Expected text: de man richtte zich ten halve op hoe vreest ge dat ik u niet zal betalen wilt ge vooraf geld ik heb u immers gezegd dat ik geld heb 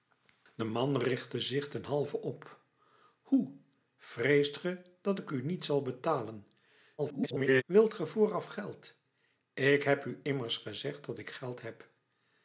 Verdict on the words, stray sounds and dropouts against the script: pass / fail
fail